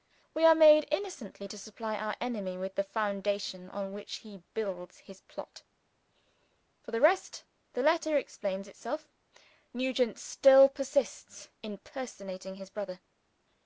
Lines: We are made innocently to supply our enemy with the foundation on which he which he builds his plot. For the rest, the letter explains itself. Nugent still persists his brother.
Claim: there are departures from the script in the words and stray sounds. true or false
true